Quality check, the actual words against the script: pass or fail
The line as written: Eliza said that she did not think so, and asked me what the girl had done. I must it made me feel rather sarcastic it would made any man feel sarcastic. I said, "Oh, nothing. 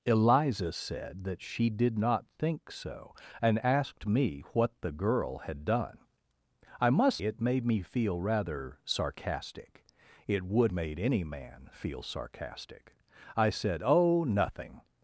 pass